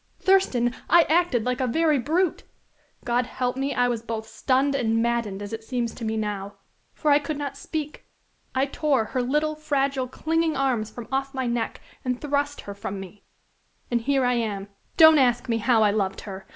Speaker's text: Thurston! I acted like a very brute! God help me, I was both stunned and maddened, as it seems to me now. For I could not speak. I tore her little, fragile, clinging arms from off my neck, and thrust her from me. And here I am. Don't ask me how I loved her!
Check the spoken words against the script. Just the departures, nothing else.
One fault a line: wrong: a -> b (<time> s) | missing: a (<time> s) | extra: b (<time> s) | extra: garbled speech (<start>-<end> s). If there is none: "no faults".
no faults